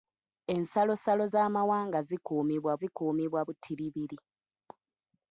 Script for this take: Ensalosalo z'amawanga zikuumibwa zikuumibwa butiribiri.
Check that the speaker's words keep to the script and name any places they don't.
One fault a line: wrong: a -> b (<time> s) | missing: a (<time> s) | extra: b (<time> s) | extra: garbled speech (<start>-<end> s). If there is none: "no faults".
no faults